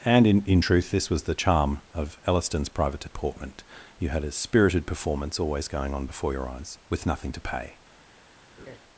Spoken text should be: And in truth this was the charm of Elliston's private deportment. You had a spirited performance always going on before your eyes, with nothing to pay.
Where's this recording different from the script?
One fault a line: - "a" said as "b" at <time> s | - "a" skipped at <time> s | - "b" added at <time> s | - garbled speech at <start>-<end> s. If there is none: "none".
- "in" added at 0.4 s